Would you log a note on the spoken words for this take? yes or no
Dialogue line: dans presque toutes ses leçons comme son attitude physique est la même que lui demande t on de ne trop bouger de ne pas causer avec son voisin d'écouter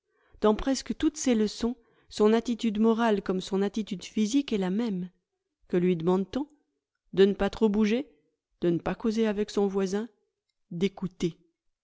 yes